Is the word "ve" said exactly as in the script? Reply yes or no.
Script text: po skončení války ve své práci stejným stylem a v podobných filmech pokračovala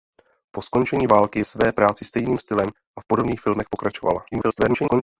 no